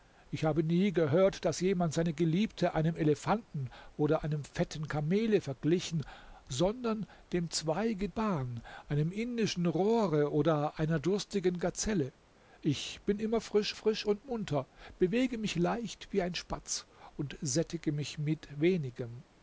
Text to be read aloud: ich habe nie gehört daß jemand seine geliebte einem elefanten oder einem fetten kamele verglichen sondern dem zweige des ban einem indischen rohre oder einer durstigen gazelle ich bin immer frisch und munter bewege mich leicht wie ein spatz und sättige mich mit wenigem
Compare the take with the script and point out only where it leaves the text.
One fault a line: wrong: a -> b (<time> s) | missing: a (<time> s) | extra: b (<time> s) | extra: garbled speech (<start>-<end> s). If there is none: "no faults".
missing: des (8.1 s)
extra: frisch (13.7 s)